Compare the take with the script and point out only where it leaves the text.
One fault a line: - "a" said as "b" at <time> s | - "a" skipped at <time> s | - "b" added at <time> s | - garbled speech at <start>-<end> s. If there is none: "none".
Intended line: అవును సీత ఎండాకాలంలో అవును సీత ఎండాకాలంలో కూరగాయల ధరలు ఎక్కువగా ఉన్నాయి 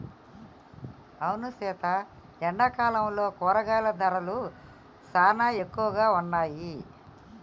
- "అవును సీత ఎండాకాలంలో" skipped at 3.2 s
- "సానా" added at 5.0 s